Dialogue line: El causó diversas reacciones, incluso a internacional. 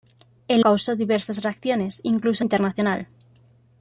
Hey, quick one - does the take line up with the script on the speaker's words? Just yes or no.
yes